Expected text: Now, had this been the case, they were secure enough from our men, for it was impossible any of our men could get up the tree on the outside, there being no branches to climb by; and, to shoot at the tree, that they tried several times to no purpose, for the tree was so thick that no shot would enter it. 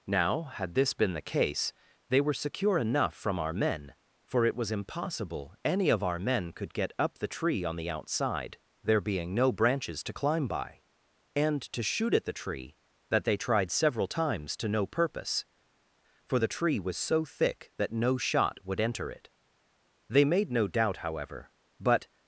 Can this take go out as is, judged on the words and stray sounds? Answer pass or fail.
fail